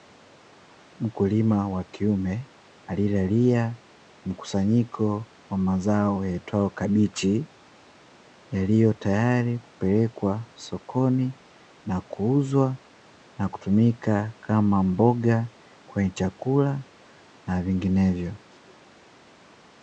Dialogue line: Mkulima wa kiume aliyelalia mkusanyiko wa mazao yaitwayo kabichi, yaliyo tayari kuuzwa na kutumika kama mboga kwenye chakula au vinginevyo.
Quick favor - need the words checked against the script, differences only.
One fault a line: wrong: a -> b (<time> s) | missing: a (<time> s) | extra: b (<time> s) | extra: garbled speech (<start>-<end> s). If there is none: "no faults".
extra: kupelekwa sokoni na (9.6 s)
wrong: au -> na (17.5 s)